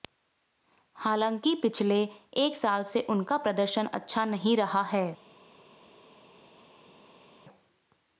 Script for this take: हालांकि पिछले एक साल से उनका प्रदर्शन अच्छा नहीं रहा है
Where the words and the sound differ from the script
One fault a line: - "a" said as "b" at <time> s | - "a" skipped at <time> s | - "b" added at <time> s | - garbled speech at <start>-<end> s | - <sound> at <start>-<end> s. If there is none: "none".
none